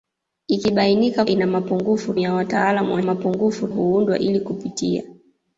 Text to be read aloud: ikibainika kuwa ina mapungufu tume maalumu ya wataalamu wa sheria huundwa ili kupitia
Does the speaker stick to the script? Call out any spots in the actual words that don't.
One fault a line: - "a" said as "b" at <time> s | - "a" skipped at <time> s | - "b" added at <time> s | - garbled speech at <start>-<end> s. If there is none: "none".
- "kuwa" skipped at 1.2 s
- "tume maalumu" skipped at 2.1 s
- "sheria" said as "mapungufu" at 3.0 s